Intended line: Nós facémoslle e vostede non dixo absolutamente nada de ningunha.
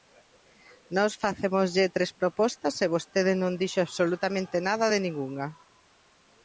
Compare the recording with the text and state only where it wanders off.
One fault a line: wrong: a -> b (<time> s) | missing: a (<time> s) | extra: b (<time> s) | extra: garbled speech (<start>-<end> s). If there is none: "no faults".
extra: tres propostas (1.9 s)